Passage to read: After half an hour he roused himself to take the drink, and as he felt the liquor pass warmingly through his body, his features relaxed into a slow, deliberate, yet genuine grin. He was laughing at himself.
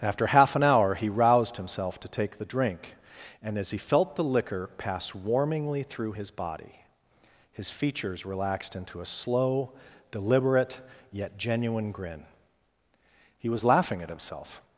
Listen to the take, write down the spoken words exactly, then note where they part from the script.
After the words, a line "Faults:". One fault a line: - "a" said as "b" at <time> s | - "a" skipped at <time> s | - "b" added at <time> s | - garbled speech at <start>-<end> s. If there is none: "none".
After half an hour he roused himself to take the drink, and as he felt the liquor pass warmingly through his body, his features relaxed into a slow, deliberate, yet genuine grin. He was laughing at himself.
Faults:
none